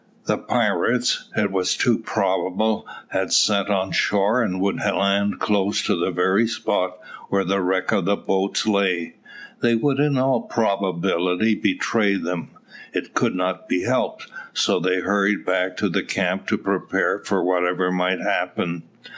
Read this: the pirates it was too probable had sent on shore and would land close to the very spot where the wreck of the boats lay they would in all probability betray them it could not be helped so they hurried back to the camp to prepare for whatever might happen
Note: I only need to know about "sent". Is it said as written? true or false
true